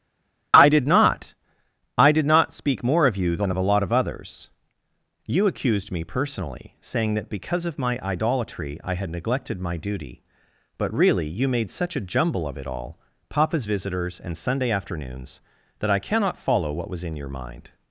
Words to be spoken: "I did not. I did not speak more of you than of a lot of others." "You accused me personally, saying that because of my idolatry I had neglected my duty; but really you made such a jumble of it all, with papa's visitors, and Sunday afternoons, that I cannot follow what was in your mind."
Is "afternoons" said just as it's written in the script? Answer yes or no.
yes